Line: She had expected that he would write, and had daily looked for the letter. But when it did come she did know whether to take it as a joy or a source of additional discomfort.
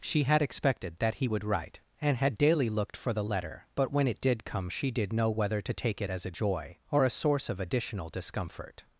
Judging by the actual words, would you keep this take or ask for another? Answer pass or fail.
pass